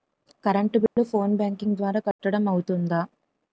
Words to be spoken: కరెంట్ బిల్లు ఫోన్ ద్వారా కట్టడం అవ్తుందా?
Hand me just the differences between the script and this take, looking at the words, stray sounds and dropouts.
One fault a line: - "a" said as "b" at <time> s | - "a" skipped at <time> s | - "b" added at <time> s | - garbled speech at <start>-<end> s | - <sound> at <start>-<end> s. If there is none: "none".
- dropout at 0.9-1.0 s
- "బ్యాంకింగ్" added at 1.4 s
- dropout at 2.1-2.2 s